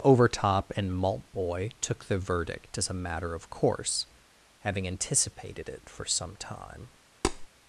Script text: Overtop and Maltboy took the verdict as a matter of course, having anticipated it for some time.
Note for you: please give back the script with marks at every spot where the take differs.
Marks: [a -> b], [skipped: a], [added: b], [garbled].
Overtop and Maltboy took the verdict as a matter of course, having anticipated it for some time.